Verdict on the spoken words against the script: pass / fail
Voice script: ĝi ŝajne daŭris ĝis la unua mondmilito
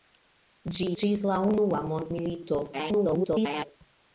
fail